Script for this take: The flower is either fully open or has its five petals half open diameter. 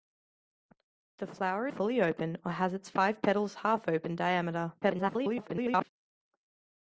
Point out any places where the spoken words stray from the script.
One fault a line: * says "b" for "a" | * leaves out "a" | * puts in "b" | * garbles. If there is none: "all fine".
* leaves out "is either"
* garbles